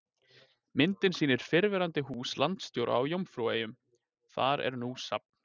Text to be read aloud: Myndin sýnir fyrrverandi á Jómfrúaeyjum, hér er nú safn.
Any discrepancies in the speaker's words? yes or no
yes